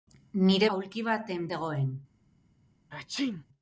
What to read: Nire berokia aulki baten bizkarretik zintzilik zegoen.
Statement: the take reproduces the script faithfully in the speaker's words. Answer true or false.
false